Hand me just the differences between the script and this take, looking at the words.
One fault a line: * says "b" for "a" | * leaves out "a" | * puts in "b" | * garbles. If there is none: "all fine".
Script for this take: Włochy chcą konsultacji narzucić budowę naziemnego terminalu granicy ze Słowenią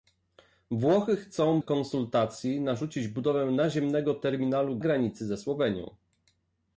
all fine